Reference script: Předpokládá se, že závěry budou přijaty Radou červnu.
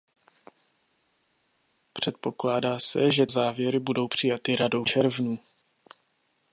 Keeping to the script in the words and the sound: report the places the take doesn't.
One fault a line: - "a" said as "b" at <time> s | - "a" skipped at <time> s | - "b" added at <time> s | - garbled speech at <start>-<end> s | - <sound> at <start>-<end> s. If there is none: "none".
none